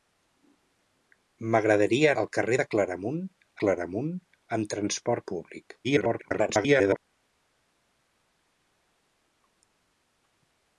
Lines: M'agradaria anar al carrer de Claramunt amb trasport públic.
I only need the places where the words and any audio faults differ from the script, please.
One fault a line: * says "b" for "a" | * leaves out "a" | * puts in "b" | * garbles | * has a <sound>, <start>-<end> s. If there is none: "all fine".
* leaves out "anar"
* puts in "Claramunt"
* garbles